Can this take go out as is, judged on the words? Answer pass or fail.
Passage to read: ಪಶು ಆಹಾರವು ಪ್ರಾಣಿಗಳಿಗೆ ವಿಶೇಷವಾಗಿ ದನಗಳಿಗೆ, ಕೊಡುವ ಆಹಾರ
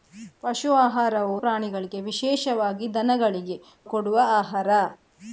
pass